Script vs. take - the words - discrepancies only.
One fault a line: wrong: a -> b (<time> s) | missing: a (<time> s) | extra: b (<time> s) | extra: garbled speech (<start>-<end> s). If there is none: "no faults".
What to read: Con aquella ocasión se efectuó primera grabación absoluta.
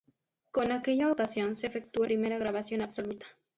no faults